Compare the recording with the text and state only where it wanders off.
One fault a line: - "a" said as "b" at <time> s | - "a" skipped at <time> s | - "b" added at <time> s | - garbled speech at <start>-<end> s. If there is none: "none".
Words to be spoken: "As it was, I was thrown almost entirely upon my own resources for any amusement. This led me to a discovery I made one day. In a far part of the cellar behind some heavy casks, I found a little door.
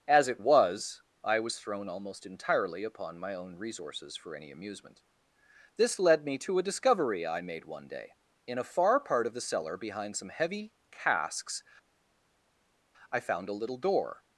none